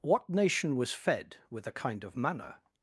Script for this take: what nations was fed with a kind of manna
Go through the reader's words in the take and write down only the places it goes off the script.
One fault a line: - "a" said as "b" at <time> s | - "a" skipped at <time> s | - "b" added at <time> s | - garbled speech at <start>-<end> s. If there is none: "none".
- "nations" said as "nation" at 0.3 s